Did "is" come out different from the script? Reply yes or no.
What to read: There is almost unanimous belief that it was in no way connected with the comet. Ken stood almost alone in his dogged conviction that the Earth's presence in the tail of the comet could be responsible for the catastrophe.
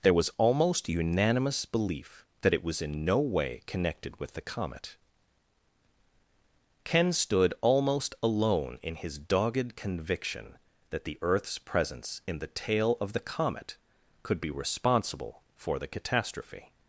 yes